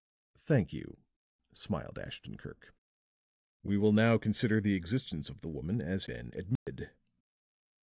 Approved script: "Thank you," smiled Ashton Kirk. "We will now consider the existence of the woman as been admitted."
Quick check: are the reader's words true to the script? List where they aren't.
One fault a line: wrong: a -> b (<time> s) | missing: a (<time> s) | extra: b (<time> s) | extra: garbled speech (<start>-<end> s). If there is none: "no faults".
no faults